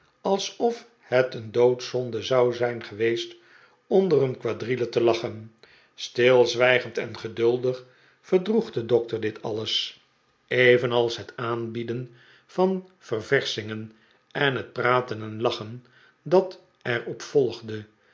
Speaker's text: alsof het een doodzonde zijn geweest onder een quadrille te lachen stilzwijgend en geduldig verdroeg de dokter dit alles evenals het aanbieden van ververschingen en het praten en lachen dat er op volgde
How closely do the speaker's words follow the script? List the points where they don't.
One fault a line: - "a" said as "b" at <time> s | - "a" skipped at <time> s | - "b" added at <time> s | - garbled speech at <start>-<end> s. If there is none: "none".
- "zou" added at 2.2 s